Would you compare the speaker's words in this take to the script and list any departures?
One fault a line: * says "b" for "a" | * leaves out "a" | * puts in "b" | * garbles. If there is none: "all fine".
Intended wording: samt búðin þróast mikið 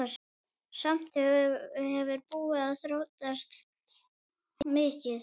* puts in "hefur"